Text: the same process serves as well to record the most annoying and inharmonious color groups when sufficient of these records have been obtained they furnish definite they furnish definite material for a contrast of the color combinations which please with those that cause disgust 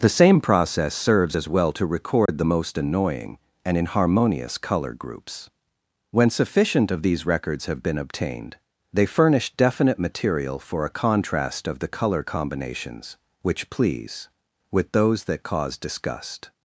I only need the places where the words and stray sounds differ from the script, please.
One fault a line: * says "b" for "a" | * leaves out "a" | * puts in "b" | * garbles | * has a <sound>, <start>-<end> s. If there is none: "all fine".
* has a dropout, 2.3-2.3 s
* leaves out "they furnish definite"